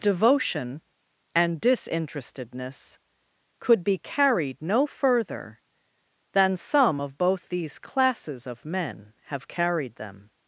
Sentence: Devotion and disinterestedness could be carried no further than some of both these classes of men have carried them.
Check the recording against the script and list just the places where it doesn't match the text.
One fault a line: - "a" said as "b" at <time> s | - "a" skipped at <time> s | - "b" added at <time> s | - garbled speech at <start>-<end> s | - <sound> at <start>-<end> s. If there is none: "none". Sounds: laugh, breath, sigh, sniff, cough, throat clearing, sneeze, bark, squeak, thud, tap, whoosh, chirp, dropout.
none